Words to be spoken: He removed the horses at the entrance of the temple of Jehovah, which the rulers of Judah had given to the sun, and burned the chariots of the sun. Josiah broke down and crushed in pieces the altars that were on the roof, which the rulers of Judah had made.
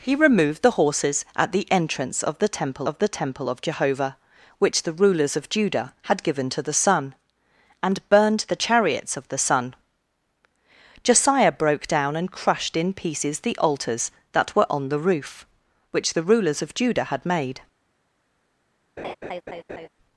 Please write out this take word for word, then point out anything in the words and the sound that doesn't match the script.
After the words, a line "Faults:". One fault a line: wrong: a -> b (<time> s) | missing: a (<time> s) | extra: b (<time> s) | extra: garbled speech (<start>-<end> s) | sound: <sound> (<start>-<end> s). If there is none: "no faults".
He removed the horses at the entrance of the temple of the temple of Jehovah, which the rulers of Judah had given to the sun, and burned the chariots of the sun. Josiah broke down and crushed in pieces the altars that were on the roof, which the rulers of Judah had made.
Faults:
extra: the temple of (3.0 s)
sound: laugh (19.0-19.9 s)